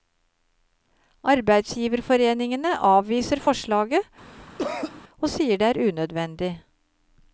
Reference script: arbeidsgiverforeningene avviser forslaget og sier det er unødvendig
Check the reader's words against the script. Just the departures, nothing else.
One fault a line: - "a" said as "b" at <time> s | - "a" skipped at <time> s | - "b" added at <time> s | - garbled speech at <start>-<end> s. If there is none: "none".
none